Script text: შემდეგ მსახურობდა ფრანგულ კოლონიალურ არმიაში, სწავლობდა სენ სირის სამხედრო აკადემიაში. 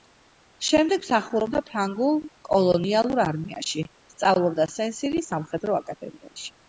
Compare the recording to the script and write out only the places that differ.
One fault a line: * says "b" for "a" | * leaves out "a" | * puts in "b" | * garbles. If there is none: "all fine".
all fine